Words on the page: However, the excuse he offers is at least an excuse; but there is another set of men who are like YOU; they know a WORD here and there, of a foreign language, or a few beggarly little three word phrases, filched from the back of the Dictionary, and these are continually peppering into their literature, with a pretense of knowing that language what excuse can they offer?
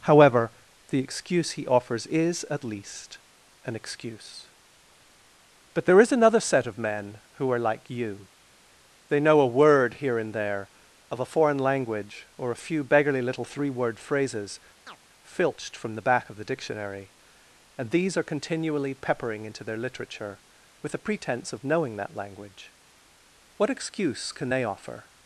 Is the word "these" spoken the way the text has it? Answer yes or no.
yes